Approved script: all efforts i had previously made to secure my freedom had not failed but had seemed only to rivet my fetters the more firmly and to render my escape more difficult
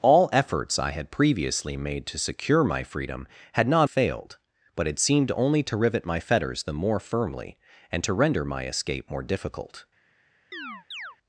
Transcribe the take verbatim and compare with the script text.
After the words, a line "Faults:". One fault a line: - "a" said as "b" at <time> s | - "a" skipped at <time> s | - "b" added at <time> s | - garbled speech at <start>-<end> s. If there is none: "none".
all efforts i had previously made to secure my freedom had not failed but had seemed only to rivet my fetters the more firmly and to render my escape more difficult
Faults:
none